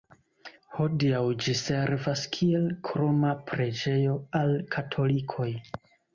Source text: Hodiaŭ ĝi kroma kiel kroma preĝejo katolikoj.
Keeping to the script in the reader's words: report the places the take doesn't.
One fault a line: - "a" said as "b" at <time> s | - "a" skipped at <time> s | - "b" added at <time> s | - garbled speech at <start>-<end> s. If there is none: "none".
- "kroma" said as "servas" at 1.6 s
- "al" added at 4.4 s